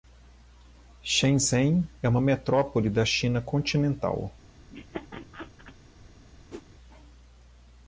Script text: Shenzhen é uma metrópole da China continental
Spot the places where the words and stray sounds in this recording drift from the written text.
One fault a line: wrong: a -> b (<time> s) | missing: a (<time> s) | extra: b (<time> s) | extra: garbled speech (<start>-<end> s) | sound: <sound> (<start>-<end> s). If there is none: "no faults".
sound: laugh (4.7-5.8 s)
sound: whoosh (6.5-6.6 s)